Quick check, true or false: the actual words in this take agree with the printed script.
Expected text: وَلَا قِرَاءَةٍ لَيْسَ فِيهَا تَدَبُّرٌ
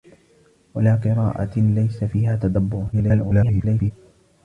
false